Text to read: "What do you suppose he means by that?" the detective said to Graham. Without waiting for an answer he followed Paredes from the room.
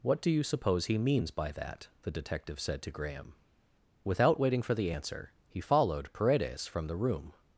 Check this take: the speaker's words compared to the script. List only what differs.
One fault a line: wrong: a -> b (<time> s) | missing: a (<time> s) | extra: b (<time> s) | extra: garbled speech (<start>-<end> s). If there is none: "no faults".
wrong: an -> the (4.7 s)